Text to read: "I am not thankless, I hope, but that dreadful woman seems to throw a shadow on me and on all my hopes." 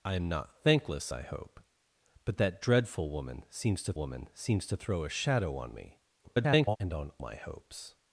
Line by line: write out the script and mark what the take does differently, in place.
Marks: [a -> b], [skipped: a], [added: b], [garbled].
"I am not thankless, I hope, but that dreadful woman seems to [added: woman seems to] throw a shadow on me [garbled] and on [skipped: all] my hopes."